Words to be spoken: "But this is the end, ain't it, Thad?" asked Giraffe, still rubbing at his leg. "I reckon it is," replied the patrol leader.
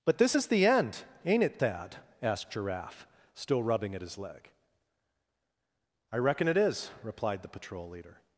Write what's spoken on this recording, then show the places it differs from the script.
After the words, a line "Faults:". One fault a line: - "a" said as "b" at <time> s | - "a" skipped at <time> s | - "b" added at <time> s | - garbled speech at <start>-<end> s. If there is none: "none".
"But this is the end, ain't it, Thad?" asked Giraffe, still rubbing at his leg. "I reckon it is," replied the patrol leader.
Faults:
none